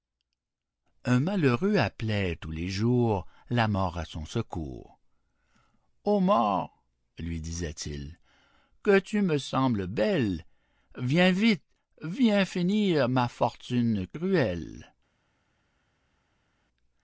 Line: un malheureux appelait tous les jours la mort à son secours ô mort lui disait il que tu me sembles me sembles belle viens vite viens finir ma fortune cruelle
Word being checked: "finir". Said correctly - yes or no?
yes